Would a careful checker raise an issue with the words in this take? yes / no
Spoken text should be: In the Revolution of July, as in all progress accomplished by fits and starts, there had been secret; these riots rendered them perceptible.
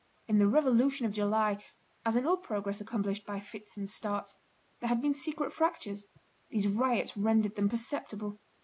yes